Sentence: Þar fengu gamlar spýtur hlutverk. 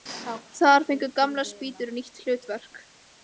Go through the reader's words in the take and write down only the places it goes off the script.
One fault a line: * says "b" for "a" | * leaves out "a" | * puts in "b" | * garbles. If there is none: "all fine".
* puts in "nýtt"